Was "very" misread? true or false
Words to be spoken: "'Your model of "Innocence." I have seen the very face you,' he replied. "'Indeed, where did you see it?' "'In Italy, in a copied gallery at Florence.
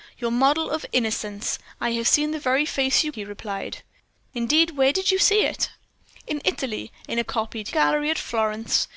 false